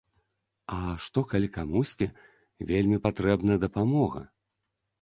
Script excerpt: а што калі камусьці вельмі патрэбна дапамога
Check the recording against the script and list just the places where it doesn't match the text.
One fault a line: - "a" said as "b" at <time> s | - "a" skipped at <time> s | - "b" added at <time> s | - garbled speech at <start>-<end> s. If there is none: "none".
none